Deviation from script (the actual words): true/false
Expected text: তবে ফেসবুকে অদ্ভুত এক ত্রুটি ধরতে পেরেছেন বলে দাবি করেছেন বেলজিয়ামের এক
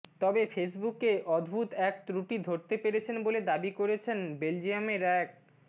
false